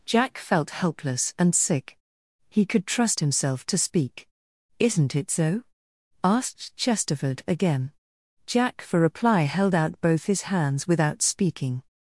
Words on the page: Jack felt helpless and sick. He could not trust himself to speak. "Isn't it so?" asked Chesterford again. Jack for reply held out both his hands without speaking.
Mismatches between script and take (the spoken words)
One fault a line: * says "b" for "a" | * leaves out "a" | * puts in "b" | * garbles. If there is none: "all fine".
* leaves out "not"